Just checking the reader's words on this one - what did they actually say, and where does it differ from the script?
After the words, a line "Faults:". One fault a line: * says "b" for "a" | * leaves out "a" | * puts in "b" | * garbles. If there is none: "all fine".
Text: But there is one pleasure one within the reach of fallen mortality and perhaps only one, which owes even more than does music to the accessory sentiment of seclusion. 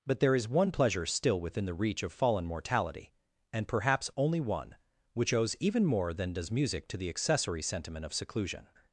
But there is one pleasure still within the reach of fallen mortality and perhaps only one, which owes even more than does music to the accessory sentiment of seclusion.
Faults:
* says "still" for "one"